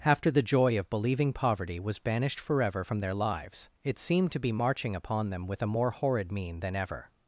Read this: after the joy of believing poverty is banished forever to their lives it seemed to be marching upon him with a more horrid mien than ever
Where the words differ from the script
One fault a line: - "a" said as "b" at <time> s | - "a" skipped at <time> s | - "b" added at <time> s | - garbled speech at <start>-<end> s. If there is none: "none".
- "is" said as "was" at 1.8 s
- "to" said as "from" at 2.8 s
- "him" said as "them" at 5.3 s